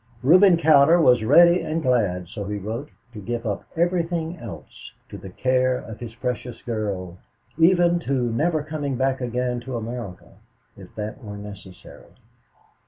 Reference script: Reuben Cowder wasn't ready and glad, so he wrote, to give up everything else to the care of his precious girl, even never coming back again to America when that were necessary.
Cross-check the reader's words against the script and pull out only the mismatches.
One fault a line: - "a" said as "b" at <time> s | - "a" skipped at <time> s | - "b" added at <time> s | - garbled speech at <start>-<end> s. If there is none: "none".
- "wasn't" said as "was" at 1.0 s
- "to" added at 8.0 s
- "when" said as "if" at 10.8 s